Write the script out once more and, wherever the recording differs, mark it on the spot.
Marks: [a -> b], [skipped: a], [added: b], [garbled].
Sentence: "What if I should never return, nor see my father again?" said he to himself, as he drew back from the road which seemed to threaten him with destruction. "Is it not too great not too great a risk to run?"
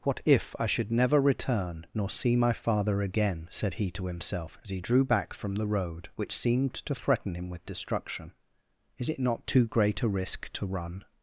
"What if I should never return, nor see my father again?" said he to himself, as he drew back from the road which seemed to threaten him with destruction. "Is it not too great [skipped: not too great] a risk to run?"